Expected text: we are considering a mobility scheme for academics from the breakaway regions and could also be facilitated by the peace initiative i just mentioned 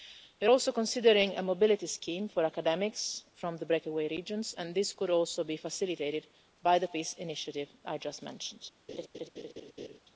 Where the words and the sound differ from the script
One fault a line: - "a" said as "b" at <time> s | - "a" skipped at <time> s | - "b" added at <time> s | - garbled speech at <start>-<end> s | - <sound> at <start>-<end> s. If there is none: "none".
- "also" added at 0.5 s
- "this" added at 4.7 s
- laugh at 8.9-10.0 s